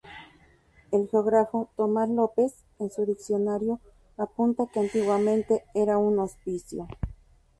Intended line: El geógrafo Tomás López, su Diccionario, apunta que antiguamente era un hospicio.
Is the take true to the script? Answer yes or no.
no